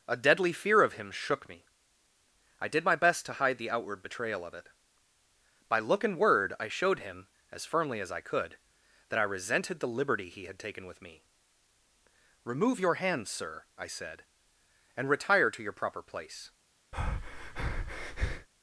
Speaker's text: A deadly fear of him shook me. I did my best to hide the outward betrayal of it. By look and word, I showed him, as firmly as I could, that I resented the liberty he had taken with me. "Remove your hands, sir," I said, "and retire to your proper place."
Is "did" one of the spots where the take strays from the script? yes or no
no